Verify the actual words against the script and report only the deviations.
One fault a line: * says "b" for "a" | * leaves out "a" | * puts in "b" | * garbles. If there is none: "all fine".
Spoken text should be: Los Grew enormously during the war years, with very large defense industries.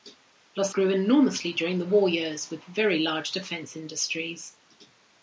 all fine